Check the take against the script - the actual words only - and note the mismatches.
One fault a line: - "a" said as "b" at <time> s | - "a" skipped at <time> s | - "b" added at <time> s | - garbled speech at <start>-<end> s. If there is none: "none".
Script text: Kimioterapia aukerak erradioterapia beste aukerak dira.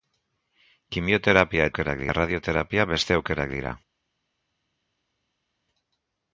none